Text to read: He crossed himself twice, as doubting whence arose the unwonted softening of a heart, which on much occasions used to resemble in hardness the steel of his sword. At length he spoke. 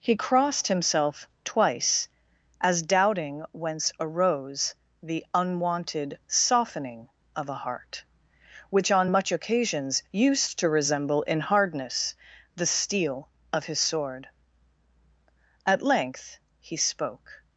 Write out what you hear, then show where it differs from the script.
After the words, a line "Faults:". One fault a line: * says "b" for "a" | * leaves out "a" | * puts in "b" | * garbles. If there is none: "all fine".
He crossed himself twice, as doubting whence arose the unwonted softening of a heart, which on much occasions used to resemble in hardness the steel of his sword. At length he spoke.
Faults:
all fine